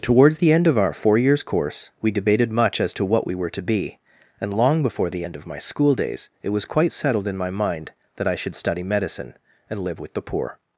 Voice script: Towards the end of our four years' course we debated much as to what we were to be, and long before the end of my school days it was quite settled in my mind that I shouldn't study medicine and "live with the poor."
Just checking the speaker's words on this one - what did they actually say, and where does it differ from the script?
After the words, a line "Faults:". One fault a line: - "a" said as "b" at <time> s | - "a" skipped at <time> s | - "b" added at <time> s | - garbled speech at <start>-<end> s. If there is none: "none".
Towards the end of our four years' course we debated much as to what we were to be, and long before the end of my school days it was quite settled in my mind that I should study medicine and "live with the poor."
Faults:
- "shouldn't" said as "should" at 8.4 s